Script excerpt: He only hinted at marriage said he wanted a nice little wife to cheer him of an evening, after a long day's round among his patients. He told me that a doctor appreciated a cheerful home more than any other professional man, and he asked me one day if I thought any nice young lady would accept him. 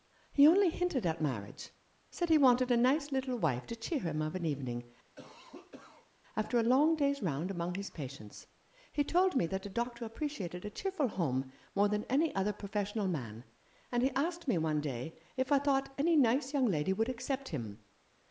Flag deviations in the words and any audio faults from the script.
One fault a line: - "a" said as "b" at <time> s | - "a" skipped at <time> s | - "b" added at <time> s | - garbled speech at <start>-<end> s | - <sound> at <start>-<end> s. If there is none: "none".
- cough at 5.1-6.1 s